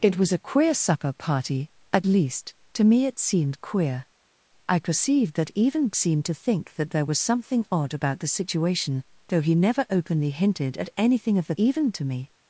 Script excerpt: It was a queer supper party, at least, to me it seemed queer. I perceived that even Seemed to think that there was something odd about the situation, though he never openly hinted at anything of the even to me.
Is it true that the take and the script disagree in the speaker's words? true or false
false